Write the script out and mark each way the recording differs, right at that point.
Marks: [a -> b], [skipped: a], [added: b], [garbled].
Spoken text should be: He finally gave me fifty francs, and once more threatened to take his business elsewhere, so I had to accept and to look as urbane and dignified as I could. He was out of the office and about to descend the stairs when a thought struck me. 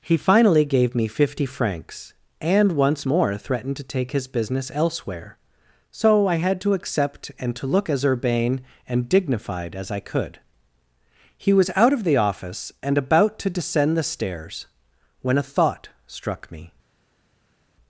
He finally gave me fifty francs, and once more threatened to take his business elsewhere, so I had to accept and to look as urbane and dignified as I could. He was out of the office and about to descend the stairs when a thought struck me.